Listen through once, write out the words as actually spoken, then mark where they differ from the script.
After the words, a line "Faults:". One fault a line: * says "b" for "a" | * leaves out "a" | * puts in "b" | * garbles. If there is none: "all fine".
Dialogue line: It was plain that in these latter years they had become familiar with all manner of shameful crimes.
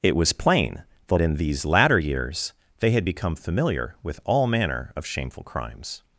It was plain that in these latter years they had become familiar with all manner of shameful crimes.
Faults:
all fine